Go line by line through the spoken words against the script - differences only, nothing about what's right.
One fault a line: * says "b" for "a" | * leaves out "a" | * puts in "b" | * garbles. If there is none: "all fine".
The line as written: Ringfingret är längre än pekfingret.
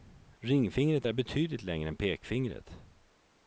* puts in "betydligt"